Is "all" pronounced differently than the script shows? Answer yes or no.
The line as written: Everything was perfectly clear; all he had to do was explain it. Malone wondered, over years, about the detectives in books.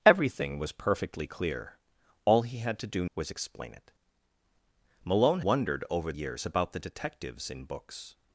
no